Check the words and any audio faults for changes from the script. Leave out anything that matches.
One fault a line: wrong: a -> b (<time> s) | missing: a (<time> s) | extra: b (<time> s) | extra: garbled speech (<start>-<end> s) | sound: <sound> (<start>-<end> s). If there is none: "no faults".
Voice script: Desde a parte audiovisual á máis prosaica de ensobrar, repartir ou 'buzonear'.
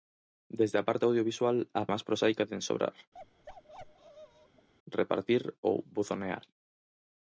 sound: bark (3.1-4.7 s)